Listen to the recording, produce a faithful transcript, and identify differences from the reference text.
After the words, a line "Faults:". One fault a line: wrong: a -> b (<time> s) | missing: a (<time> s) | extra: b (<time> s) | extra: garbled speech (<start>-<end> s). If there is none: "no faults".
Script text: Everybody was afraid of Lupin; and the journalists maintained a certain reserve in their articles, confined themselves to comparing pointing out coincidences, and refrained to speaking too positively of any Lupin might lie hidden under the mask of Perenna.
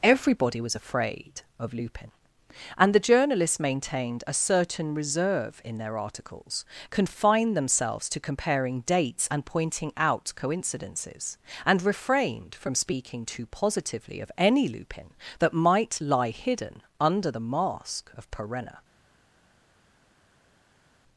Everybody was afraid of Lupin; and the journalists maintained a certain reserve in their articles, confined themselves to comparing dates and pointing out coincidences, and refrained from speaking too positively of any Lupin that might lie hidden under the mask of Perenna.
Faults:
extra: dates and (8.9 s)
wrong: to -> from (12.5 s)
extra: that (15.4 s)